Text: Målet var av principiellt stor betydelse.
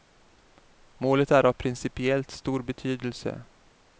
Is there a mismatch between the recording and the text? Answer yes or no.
yes